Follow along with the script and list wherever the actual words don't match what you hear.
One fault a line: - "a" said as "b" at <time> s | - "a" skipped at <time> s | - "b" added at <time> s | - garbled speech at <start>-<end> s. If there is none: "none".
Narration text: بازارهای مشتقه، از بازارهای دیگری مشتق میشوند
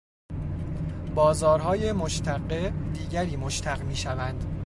- "از بازارهای" skipped at 2.7 s